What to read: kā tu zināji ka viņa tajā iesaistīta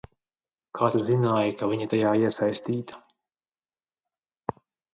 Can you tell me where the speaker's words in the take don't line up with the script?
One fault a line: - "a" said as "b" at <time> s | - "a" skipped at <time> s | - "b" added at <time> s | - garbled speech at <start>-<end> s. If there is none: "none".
none